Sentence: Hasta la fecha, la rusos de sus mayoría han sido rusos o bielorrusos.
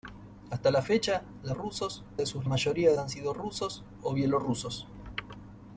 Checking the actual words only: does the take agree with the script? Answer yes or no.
yes